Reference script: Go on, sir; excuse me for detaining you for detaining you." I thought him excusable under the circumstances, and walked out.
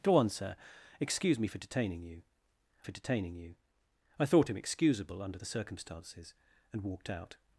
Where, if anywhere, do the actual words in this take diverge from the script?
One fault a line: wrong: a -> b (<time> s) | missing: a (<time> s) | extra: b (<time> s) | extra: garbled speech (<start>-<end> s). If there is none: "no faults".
no faults